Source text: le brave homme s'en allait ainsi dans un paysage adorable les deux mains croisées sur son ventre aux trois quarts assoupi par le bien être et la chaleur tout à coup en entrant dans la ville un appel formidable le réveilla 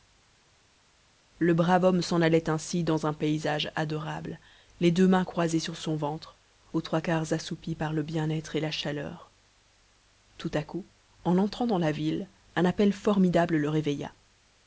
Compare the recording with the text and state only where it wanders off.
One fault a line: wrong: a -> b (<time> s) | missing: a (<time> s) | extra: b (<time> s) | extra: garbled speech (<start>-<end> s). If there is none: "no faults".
no faults